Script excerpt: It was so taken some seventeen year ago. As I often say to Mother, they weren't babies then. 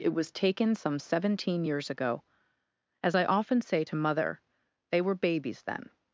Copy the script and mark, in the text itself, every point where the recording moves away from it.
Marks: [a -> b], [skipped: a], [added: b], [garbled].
It was [skipped: so] taken some seventeen [year -> years] ago. As I often say to Mother, they [weren't -> were] babies then.